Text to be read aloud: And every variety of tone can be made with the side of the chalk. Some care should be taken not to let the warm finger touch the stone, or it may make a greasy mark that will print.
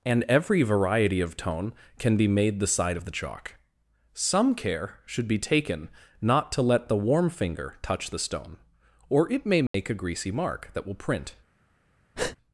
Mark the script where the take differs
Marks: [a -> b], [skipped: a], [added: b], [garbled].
And every variety of tone can be made [skipped: with] the side of the chalk. Some care should be taken not to let the warm finger touch the stone, or it may make a greasy mark that will print.